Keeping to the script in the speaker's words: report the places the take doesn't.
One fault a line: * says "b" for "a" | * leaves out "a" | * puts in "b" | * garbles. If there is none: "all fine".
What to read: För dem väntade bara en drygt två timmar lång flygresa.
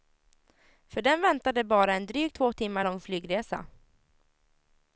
all fine